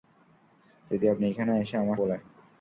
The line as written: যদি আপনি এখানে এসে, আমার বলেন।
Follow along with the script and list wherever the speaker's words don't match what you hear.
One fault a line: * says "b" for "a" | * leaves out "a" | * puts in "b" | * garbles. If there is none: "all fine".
all fine